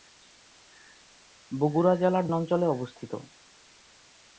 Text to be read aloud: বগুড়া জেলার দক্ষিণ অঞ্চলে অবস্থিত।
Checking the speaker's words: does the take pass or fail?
fail